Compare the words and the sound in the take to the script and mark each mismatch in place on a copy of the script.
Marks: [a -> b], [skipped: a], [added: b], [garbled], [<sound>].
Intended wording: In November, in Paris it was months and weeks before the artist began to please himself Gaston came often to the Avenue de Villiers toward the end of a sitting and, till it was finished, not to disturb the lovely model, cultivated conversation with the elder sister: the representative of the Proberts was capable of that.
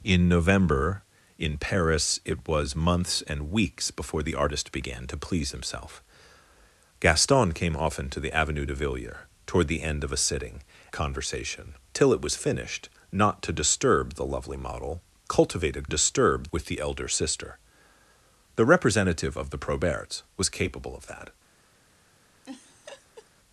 In November, in Paris it was months and weeks before the artist began to please himself Gaston came often to the Avenue de Villiers toward the end of a sitting [and, -> conversation] till it was finished, not to disturb the lovely model, cultivated [conversation -> disturb] with the elder sister: the representative of the Proberts was capable of that. [laugh]